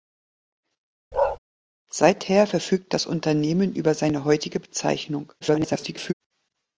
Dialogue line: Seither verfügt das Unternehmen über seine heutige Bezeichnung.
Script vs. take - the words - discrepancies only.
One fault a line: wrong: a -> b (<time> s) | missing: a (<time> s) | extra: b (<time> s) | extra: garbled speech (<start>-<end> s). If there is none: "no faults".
extra: garbled speech (5.4-6.1 s)